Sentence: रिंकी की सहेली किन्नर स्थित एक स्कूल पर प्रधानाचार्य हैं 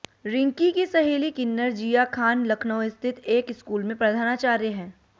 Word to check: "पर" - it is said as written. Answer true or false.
false